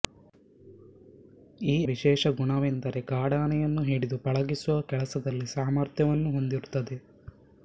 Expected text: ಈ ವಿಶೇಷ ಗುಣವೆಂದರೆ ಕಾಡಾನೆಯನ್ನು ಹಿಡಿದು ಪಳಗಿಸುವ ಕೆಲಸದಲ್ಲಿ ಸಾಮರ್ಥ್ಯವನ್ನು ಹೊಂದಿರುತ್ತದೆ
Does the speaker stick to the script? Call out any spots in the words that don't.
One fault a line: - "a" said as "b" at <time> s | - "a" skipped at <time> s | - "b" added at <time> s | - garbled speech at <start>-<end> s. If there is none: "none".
none